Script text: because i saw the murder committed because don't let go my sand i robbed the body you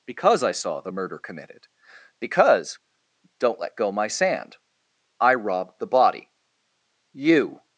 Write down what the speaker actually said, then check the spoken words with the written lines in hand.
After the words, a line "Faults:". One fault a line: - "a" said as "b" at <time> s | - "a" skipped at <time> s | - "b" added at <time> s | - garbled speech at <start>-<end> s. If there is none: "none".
because i saw the murder committed because don't let go my sand i robbed the body you
Faults:
none